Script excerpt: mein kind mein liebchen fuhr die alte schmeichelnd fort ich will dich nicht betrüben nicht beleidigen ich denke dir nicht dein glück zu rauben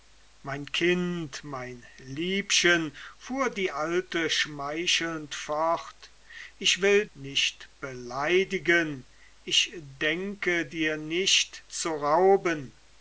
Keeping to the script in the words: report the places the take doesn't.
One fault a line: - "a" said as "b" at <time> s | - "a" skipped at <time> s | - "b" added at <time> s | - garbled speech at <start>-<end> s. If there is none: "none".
- "dich" skipped at 7.0 s
- "betrüben nicht" skipped at 7.7 s
- "dein glück" skipped at 11.6 s